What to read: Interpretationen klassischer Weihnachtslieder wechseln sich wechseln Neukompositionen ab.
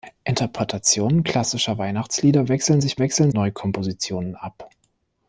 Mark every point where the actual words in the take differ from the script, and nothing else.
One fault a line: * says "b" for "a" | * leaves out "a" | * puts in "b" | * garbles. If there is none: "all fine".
all fine